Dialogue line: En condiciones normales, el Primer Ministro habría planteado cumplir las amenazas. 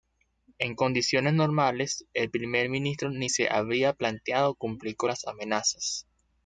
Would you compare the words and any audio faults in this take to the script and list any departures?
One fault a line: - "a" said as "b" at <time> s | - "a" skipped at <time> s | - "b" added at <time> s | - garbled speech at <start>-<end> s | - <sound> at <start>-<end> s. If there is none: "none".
- "ni se" added at 3.1 s
- "con" added at 5.0 s